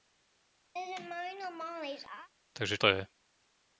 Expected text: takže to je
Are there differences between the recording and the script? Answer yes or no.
no